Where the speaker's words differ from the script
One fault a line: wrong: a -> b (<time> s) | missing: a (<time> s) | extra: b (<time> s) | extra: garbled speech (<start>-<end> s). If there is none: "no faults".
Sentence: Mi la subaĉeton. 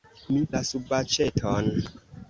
no faults